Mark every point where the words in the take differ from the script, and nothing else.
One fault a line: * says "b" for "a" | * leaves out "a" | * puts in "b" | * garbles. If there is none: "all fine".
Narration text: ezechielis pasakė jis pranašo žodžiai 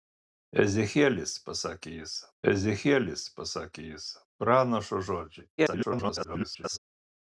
* puts in "ezechielis pasakė jis"
* garbles